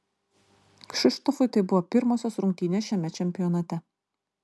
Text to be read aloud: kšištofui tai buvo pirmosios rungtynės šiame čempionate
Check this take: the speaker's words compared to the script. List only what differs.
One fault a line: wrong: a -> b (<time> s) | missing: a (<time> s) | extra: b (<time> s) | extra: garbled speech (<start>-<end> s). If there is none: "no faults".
no faults